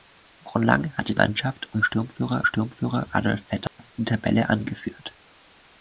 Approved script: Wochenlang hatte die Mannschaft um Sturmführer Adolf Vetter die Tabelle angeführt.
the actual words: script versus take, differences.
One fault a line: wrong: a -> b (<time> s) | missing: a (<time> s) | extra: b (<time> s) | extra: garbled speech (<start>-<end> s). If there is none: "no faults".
missing: die (1.1 s)
extra: Sturmführer (2.4 s)